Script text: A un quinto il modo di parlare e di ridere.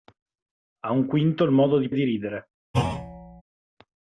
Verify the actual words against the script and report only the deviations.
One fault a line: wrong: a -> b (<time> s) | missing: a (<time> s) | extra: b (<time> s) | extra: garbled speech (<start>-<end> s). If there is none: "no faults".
missing: parlare (1.9 s)